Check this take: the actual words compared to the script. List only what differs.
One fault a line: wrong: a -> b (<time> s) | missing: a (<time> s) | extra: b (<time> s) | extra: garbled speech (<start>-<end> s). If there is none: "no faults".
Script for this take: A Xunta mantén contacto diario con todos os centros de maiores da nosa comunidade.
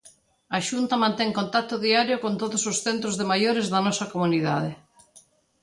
no faults